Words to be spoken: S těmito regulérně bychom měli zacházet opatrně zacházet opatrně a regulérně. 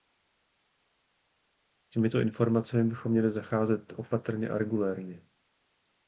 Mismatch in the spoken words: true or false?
true